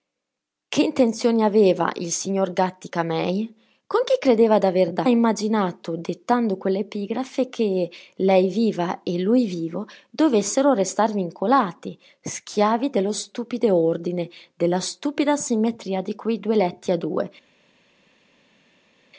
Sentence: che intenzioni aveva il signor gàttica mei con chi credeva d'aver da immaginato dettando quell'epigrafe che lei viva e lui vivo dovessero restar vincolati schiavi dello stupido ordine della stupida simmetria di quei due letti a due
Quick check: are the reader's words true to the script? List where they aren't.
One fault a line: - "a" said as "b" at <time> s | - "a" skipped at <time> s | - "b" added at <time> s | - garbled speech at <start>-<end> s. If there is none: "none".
none